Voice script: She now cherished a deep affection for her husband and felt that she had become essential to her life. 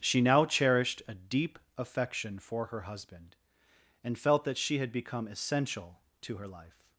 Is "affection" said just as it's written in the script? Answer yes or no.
yes